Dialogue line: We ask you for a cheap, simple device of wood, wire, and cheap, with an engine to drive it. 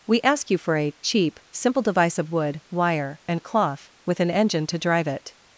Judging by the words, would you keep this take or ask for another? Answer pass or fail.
fail